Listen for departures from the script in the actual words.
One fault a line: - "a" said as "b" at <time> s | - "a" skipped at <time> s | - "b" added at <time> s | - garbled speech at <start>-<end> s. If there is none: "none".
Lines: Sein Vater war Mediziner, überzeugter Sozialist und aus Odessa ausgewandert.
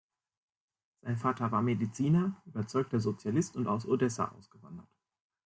none